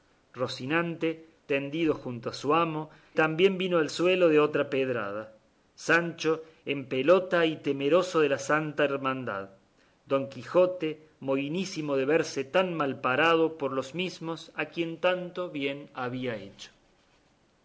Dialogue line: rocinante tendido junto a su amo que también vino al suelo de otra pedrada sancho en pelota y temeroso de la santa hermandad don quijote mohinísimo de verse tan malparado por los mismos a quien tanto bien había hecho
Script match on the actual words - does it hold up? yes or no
no